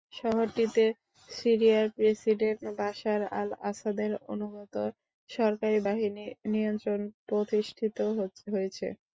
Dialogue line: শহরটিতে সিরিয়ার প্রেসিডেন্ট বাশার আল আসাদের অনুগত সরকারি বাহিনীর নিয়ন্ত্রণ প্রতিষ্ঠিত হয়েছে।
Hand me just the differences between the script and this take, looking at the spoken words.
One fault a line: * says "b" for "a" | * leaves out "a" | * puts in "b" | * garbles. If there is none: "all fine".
all fine